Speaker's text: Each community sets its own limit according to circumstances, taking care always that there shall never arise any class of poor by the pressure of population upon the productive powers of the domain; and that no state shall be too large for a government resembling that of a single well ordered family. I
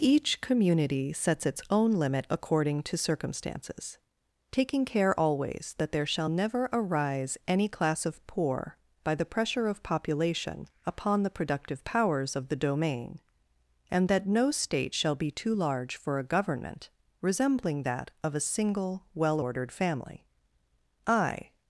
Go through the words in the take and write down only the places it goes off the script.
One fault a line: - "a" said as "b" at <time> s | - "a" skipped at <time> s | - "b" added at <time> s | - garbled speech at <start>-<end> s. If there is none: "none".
none